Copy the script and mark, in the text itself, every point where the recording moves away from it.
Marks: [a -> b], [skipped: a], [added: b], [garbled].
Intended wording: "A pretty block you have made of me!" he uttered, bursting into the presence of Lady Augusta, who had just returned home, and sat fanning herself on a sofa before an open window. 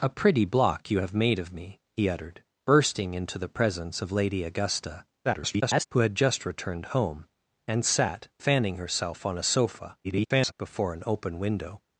"A pretty block you have made of me!" he uttered, bursting into the presence of Lady Augusta, [garbled] who had just returned home, and sat fanning herself on a sofa [garbled] before an open window.